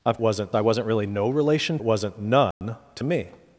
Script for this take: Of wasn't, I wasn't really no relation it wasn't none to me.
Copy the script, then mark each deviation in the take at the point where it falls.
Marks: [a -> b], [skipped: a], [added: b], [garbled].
Of wasn't, I wasn't really no relation it wasn't none to me.